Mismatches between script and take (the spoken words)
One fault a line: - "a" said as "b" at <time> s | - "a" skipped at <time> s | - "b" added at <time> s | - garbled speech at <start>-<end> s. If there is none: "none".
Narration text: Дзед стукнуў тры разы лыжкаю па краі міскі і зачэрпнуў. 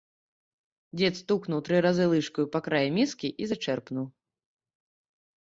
none